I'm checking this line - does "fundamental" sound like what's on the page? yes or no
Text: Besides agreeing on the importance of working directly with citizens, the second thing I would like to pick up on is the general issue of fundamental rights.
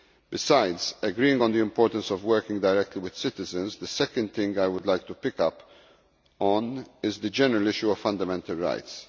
yes